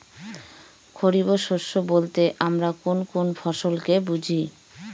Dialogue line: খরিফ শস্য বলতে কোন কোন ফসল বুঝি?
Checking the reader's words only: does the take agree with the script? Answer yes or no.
no